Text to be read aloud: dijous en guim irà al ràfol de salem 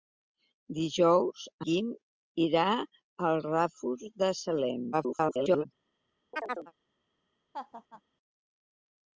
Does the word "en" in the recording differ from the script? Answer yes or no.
yes